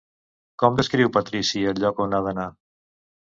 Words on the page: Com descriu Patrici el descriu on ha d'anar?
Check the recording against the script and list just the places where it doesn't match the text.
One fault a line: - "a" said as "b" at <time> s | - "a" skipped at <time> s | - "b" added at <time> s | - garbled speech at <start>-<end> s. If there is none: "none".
- "descriu" said as "lloc" at 1.9 s